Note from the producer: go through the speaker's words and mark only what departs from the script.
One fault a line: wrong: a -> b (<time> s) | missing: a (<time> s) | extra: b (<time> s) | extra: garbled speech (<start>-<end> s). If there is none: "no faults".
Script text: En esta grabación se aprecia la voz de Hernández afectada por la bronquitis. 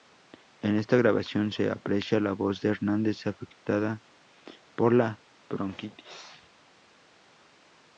no faults